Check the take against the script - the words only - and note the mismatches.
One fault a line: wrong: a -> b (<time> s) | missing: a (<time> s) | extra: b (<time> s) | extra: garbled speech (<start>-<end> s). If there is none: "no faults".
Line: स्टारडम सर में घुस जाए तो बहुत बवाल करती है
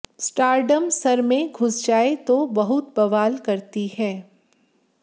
no faults